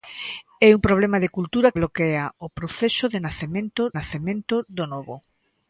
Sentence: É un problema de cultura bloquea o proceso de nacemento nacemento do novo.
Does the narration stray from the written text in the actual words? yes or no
no